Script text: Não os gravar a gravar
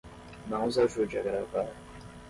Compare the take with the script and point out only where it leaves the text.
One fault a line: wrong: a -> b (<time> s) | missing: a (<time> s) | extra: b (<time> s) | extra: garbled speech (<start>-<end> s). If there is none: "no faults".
wrong: gravar -> ajude (0.8 s)